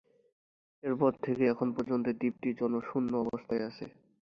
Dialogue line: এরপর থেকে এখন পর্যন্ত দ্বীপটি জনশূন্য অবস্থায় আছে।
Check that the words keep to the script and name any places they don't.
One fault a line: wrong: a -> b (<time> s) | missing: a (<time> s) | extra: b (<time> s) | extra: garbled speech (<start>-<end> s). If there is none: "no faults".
no faults